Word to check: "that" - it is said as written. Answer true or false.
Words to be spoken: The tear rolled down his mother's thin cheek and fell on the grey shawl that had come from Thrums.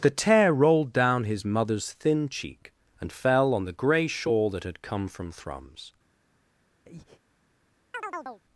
true